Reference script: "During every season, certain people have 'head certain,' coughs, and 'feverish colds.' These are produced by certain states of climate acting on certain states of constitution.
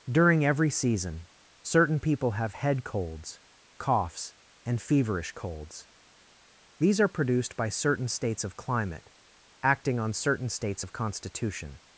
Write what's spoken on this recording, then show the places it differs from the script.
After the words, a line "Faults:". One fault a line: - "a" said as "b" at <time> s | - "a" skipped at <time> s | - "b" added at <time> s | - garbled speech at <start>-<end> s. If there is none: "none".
"During every season, certain people have 'head colds,' coughs, and 'feverish colds.' These are produced by certain states of climate acting on certain states of constitution.
Faults:
- "certain" said as "colds" at 2.8 s